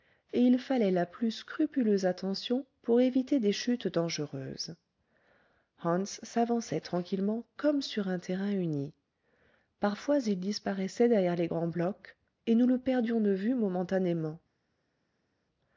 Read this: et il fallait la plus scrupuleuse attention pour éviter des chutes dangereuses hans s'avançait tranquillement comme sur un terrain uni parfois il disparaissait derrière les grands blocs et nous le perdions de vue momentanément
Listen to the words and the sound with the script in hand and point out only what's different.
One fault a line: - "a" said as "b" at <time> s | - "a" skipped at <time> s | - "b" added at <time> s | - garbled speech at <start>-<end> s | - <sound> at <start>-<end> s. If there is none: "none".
none